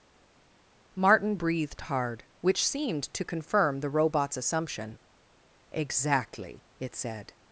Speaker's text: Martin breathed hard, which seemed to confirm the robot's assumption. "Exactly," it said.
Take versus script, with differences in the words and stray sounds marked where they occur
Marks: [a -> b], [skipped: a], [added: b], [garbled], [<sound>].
Martin breathed hard, which seemed to confirm the robot's assumption. "Exactly," it said.